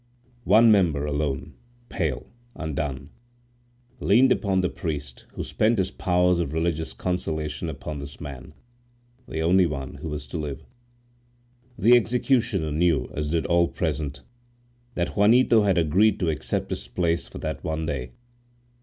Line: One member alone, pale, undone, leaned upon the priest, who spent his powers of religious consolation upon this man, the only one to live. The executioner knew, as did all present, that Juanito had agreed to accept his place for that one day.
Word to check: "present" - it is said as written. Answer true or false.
true